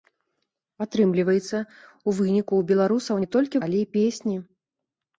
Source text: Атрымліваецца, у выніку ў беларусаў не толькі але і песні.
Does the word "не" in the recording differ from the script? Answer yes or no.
no